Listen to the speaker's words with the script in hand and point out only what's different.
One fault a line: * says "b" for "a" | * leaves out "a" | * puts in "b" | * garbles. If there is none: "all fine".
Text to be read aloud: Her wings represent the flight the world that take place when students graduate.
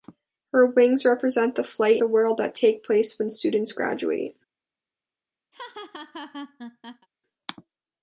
all fine